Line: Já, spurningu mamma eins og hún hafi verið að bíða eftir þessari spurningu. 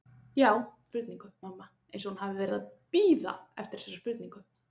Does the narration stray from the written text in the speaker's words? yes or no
no